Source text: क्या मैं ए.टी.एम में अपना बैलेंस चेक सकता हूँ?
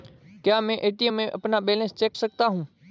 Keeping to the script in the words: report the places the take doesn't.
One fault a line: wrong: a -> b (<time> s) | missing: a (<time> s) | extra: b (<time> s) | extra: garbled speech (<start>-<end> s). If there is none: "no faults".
no faults